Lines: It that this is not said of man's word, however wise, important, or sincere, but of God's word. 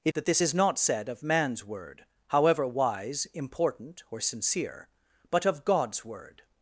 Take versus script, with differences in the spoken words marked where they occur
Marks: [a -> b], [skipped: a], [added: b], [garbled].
It that this is not said of man's word, however wise, important, or sincere, but of God's word.